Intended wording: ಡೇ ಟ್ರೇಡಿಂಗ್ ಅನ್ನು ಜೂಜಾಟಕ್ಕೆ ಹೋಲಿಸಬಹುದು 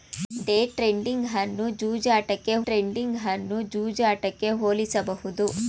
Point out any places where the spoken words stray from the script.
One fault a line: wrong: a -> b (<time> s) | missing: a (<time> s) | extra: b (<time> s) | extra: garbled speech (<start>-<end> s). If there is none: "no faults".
extra: ಟ್ರೇಡಿಂಗ್ ಅನ್ನು ಜೂಜಾಟಕ್ಕೆ (2.7 s)